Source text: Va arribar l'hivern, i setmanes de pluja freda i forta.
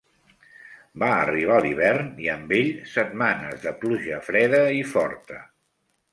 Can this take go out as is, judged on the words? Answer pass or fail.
fail